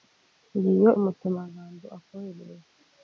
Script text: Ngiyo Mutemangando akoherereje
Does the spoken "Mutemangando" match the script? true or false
true